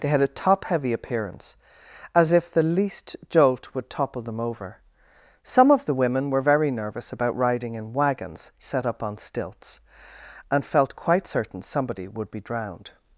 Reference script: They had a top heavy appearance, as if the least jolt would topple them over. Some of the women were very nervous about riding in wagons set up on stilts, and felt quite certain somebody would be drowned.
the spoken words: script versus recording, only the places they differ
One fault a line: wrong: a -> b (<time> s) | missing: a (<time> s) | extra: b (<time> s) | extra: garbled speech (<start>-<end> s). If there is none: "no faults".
no faults